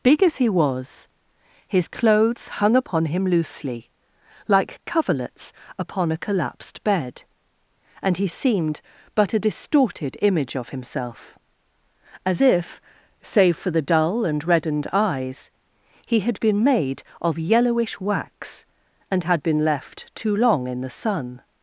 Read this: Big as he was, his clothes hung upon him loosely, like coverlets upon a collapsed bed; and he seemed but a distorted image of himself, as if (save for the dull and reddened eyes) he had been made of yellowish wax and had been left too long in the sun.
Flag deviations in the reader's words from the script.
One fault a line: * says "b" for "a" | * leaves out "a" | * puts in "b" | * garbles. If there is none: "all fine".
all fine